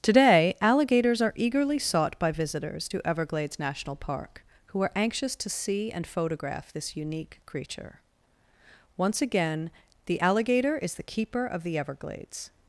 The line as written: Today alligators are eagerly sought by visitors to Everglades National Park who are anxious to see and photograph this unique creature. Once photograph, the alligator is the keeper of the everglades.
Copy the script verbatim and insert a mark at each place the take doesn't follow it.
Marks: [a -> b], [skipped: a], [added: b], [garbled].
Today alligators are eagerly sought by visitors to Everglades National Park who are anxious to see and photograph this unique creature. Once [photograph, -> again] the alligator is the keeper of the everglades.